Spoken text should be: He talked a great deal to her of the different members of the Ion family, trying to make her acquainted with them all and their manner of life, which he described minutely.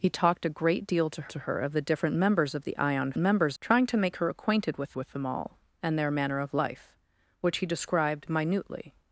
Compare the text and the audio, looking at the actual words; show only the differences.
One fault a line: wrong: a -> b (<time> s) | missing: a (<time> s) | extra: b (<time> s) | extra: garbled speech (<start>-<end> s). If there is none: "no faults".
extra: to (1.3 s)
wrong: family -> members (3.2 s)
extra: with (5.0 s)